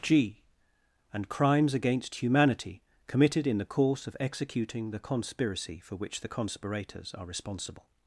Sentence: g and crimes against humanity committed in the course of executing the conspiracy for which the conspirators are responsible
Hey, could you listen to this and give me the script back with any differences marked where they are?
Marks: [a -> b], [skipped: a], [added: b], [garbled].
g and crimes against humanity committed in the course of executing the conspiracy for which the conspirators are responsible